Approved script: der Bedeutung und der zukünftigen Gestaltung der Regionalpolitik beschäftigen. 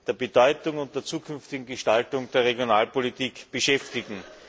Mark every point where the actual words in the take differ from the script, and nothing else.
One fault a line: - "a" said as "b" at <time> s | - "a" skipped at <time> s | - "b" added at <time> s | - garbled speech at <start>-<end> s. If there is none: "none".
none